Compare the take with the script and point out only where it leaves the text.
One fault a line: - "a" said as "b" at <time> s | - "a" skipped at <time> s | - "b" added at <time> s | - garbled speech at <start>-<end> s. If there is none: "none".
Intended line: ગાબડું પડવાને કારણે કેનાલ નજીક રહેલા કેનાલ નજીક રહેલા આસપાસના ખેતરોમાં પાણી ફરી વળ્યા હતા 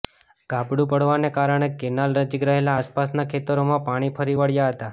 - "કેનાલ નજીક રહેલા" skipped at 2.8 s